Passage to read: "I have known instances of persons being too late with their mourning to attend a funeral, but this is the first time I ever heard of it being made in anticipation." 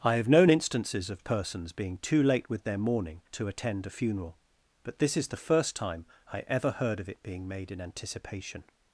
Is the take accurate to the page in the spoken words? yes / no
yes